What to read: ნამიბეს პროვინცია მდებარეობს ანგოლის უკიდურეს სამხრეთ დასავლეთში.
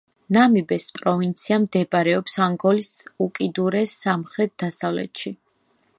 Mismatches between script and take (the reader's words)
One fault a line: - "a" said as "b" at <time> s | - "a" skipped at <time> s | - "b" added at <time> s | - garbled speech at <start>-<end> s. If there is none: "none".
none